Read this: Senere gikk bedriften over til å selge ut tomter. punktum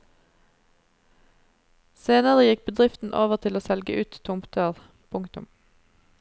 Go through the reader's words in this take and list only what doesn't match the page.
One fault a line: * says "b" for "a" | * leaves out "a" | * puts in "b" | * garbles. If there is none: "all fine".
all fine